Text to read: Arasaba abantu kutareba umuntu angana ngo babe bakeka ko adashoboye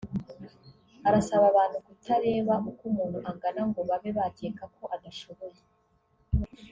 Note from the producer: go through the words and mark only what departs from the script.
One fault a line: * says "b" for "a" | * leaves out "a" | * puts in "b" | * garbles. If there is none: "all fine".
* puts in "uko"